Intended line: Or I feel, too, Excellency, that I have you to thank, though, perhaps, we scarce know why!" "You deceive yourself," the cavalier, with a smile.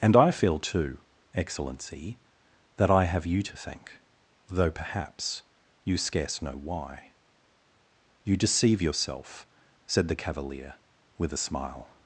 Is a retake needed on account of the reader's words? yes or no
yes